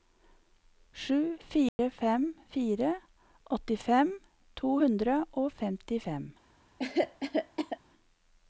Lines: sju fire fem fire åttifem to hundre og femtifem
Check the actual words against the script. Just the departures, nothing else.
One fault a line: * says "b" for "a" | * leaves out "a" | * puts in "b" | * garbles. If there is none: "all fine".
all fine